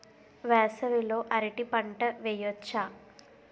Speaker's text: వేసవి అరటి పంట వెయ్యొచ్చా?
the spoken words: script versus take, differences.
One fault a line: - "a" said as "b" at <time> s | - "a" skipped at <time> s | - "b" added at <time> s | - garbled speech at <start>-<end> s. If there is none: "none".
- "లో" added at 1.0 s